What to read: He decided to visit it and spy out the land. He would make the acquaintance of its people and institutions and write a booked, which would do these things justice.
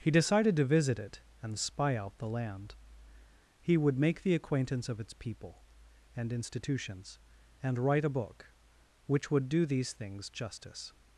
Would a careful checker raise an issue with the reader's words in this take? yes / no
yes